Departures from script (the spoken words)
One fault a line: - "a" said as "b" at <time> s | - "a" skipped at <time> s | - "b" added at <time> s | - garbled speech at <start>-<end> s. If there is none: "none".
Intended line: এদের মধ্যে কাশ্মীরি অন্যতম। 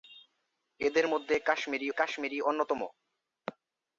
- "কাশ্মীরি" added at 1.9 s